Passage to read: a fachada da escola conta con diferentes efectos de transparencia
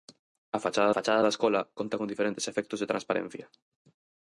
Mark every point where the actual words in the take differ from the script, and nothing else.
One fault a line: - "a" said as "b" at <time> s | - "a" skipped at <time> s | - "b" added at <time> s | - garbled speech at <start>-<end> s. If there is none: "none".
- "fachada" added at 1.0 s